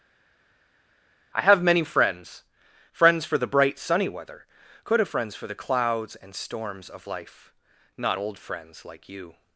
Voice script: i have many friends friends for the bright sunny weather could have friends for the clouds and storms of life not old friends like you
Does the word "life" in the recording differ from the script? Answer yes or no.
no